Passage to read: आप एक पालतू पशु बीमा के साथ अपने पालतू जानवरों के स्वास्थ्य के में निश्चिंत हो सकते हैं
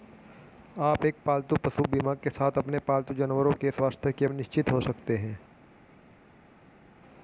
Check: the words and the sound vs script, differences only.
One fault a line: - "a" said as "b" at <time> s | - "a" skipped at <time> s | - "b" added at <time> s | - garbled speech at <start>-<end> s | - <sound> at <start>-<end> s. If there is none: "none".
none